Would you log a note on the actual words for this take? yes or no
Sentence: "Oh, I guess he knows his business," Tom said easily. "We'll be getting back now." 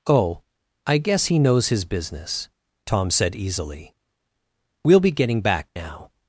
no